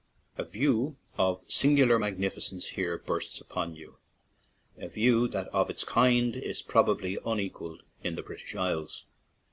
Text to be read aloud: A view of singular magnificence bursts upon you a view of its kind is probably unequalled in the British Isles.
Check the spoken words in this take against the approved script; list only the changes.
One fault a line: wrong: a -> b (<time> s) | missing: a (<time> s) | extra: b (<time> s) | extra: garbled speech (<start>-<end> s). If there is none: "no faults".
extra: here (2.7 s)
extra: that (5.3 s)